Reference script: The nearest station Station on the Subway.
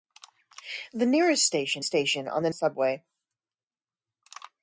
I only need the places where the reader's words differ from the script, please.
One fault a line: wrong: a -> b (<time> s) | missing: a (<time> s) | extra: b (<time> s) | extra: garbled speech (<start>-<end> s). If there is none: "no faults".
no faults